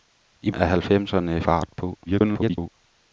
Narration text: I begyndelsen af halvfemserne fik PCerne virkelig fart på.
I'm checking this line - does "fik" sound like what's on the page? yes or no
no